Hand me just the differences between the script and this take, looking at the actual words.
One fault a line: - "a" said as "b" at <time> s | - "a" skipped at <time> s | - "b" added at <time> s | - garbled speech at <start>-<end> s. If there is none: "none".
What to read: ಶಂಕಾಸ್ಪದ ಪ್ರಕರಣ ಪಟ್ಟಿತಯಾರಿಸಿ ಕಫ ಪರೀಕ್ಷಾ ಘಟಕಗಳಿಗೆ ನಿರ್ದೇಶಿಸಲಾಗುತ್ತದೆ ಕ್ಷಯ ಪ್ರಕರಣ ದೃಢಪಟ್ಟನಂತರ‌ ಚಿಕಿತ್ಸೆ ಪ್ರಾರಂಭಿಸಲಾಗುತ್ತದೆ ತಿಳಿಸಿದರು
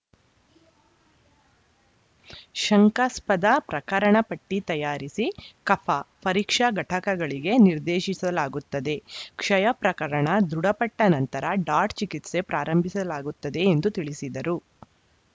- "ಡಾಟ್" added at 11.7 s
- "ಎಂದು" added at 13.7 s